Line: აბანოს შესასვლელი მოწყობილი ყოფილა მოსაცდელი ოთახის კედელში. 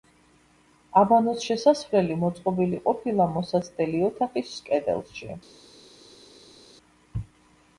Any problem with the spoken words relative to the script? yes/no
no